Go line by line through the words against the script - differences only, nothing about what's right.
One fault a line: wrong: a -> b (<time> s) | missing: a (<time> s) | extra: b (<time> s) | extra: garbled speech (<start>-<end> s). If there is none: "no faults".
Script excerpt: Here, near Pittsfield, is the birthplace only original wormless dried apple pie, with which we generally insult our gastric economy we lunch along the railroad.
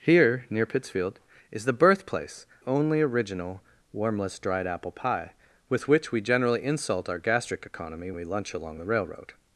no faults